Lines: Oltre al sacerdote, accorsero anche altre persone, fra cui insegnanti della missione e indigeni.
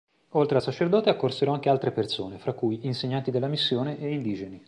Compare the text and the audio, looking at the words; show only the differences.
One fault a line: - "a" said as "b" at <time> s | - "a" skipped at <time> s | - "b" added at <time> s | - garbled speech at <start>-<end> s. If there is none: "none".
none